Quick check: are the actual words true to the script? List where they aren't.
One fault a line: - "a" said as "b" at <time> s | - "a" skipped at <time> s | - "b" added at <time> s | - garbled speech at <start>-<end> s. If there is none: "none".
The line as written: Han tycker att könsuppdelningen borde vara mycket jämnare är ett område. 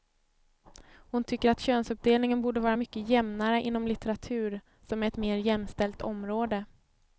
- "Han" said as "Hon" at 0.9 s
- "inom litteratur som" added at 3.6 s
- "mer jämställt" added at 5.2 s